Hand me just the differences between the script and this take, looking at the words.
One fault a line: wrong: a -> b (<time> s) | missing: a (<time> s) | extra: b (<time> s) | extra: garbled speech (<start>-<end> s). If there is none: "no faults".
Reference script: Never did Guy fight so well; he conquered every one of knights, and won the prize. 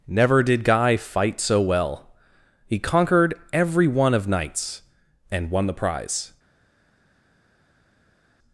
no faults